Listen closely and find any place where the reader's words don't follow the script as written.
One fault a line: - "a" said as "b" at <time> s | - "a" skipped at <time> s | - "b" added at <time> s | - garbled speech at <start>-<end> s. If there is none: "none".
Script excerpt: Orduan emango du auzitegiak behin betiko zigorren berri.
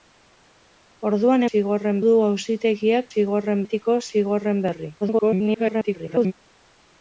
- "emango" said as "zigorren" at 1.5 s
- "behin" said as "zigorren" at 3.1 s
- garbled speech at 5.0-6.3 s